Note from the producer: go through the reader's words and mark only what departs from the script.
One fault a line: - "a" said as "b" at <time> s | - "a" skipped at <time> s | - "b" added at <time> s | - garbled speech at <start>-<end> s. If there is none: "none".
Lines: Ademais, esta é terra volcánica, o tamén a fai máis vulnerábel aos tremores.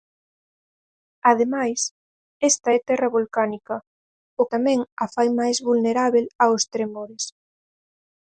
none